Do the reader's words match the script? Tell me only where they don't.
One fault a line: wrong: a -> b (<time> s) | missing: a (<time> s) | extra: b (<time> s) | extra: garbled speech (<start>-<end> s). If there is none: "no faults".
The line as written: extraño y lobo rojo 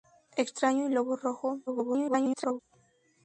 extra: garbled speech (1.7-2.6 s)